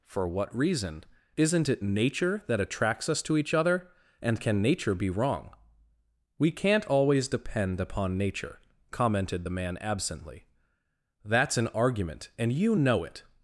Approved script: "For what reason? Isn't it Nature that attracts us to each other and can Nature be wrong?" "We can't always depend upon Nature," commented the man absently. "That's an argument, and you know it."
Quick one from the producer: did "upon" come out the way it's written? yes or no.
yes